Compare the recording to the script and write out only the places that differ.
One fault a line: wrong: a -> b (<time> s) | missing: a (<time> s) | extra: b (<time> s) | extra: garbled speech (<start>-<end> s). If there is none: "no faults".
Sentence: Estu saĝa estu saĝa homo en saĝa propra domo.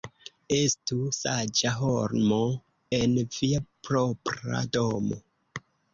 missing: estu saĝa (1.7 s)
wrong: saĝa -> via (3.4 s)